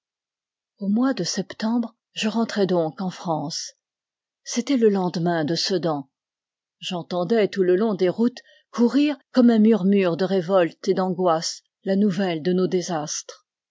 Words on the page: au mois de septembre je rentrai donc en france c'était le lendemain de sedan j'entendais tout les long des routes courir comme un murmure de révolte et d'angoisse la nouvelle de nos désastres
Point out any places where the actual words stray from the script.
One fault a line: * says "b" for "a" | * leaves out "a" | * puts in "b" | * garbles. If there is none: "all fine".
* says "le" for "les"